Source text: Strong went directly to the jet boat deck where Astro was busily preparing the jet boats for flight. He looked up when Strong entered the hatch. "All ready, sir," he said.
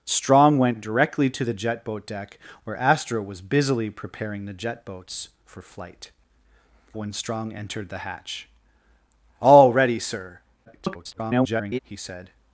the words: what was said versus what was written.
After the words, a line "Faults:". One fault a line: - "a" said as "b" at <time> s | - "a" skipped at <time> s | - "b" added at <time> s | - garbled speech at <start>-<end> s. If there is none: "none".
Strong went directly to the jet boat deck where Astro was busily preparing the jet boats for flight. When Strong entered the hatch. "All ready, sir," [garbled] he said.
Faults:
- "He looked up" skipped at 6.1 s
- garbled speech at 10.7-11.8 s